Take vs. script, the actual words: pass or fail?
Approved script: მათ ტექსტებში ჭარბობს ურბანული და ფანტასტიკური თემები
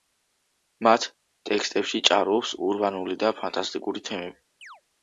pass